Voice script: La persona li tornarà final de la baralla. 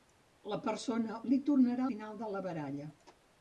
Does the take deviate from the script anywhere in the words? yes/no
no